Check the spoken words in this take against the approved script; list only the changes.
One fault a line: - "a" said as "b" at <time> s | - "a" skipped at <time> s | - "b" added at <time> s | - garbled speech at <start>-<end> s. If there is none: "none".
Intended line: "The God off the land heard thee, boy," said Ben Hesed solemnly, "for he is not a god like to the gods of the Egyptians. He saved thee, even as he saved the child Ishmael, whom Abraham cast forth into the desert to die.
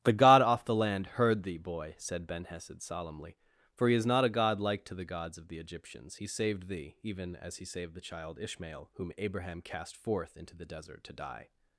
none